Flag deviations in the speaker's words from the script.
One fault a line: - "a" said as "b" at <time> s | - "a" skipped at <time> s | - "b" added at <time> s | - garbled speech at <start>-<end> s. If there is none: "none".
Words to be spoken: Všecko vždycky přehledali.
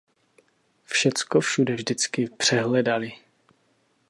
- "všude" added at 1.4 s